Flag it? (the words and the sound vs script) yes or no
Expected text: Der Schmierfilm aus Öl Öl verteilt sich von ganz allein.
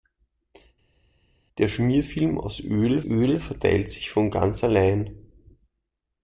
no